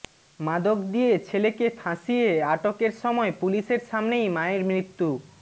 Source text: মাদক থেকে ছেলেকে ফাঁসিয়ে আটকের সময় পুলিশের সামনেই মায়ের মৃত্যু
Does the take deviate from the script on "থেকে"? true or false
true